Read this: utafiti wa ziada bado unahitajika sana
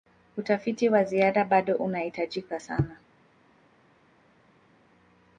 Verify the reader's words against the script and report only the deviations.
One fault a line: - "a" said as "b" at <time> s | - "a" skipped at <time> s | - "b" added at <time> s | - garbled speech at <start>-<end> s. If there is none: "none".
none